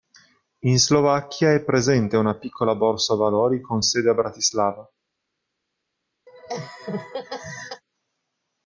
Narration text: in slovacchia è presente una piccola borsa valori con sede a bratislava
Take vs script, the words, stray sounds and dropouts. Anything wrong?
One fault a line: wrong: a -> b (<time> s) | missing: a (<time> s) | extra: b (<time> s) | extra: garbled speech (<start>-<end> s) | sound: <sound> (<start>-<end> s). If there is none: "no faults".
sound: laugh (6.3-7.8 s)